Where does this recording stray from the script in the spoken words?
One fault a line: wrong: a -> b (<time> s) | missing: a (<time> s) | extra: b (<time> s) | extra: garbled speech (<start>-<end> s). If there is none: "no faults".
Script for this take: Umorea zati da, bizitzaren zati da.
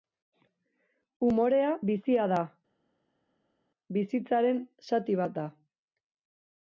wrong: zati -> bizia (1.9 s)
extra: bat (5.2 s)